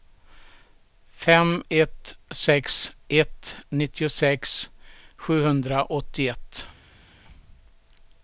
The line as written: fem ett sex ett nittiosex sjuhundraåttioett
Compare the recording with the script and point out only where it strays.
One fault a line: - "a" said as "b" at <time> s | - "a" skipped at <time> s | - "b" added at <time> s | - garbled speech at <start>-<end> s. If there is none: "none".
none